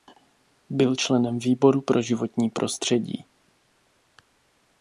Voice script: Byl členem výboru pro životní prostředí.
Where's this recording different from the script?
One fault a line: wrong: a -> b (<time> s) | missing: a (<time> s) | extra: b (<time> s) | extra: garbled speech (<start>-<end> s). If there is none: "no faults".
no faults